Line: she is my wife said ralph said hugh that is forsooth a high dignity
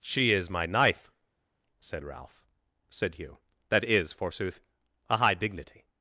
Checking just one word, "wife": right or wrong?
wrong